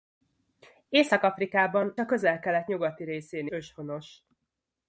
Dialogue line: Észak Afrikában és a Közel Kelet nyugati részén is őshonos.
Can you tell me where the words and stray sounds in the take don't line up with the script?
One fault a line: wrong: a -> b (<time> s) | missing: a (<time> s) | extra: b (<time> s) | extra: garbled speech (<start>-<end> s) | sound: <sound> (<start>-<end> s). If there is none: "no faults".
missing: és (1.9 s)
missing: is (3.5 s)